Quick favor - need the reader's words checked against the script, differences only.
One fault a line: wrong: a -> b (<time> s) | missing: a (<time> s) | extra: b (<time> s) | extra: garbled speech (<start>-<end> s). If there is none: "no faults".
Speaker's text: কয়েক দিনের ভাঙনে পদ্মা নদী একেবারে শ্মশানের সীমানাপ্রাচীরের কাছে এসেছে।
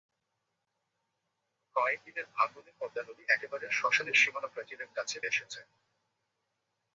no faults